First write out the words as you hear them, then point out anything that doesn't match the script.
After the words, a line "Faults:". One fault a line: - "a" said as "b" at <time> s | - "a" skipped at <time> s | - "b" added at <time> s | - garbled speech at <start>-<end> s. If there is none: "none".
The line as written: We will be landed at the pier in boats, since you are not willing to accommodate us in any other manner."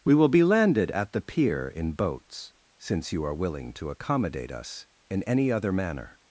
We will be landed at the pier in boats, since you are willing to accommodate us in any other manner."
Faults:
- "not" skipped at 3.4 s